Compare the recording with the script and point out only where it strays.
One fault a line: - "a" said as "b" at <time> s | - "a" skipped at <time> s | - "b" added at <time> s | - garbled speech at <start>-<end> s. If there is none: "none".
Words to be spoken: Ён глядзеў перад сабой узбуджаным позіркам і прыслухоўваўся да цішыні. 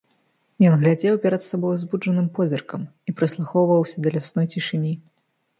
- "лясной" added at 4.2 s